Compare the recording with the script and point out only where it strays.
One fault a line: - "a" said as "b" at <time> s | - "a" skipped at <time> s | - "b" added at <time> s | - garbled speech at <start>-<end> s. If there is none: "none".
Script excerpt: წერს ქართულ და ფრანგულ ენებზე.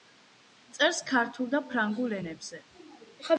none